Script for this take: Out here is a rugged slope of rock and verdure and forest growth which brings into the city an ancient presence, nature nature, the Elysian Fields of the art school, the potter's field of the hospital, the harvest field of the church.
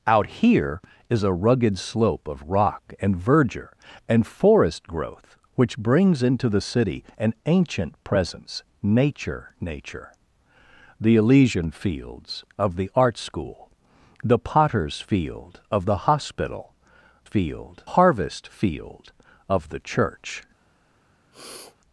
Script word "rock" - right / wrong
right